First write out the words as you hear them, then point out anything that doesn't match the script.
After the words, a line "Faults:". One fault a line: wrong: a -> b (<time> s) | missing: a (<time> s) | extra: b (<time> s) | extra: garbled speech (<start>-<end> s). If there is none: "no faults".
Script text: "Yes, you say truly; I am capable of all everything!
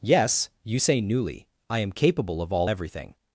"Yes, you say newly; I am capable of all everything!
Faults:
wrong: truly -> newly (1.0 s)